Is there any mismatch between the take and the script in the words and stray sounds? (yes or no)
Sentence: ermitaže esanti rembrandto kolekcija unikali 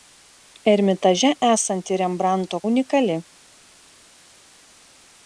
yes